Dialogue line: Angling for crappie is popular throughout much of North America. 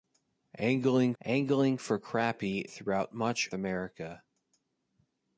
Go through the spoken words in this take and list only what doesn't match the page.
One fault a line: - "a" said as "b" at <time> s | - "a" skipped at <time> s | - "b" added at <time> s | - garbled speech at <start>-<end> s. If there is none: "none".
- "angling" added at 1.2 s
- "is popular" skipped at 2.6 s
- "of North" skipped at 3.5 s